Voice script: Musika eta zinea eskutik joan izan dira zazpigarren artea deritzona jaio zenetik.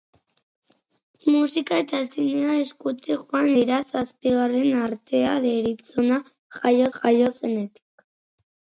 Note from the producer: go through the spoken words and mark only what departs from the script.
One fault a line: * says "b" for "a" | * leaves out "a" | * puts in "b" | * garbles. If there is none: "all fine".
* leaves out "izan"
* puts in "jaio"